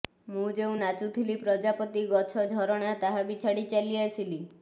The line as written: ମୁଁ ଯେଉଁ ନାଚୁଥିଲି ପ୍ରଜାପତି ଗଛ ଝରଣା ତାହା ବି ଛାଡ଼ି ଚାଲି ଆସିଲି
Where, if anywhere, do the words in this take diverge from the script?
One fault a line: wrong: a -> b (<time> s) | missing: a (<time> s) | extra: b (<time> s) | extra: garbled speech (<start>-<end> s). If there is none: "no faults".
no faults